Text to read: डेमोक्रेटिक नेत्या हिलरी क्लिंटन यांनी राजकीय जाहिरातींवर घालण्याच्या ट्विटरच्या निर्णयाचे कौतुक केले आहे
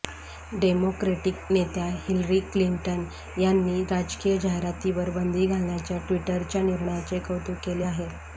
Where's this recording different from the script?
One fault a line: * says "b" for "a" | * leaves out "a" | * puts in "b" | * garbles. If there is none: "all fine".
* puts in "बंदी"